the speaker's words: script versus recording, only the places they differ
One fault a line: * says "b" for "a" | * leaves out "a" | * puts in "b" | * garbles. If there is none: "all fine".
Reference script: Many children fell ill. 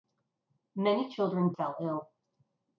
all fine